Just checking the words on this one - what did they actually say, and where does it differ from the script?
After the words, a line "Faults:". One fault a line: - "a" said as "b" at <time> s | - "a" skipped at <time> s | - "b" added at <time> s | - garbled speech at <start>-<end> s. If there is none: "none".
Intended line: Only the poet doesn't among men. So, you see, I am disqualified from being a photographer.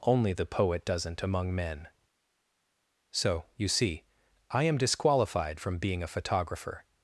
Only the poet doesn't among men. So, you see, I am disqualified from being a photographer.
Faults:
none